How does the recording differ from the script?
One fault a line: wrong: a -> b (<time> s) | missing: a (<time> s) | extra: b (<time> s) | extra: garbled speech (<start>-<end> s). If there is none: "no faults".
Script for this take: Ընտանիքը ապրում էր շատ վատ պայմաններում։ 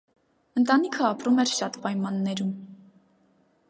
missing: վատ (1.8 s)